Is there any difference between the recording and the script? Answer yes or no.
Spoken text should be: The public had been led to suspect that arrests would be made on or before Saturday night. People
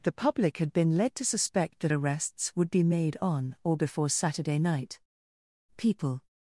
no